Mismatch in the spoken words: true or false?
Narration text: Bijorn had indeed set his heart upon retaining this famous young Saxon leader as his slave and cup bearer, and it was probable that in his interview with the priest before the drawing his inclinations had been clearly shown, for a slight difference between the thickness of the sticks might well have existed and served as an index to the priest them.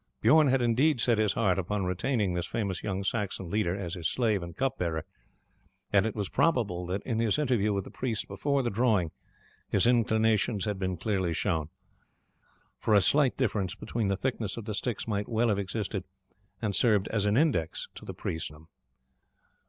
false